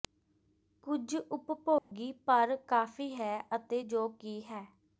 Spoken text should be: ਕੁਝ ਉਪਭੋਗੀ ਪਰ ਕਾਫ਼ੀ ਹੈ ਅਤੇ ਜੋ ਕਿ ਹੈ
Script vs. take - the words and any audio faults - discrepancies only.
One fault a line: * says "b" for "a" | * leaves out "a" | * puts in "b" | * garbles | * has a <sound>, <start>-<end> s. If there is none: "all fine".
* has a dropout, 1.8-1.9 s